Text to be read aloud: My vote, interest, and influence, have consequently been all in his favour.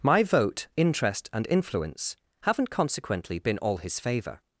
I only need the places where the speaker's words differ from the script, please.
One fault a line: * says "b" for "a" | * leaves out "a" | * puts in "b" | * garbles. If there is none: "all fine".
* says "haven't" for "have"
* leaves out "in"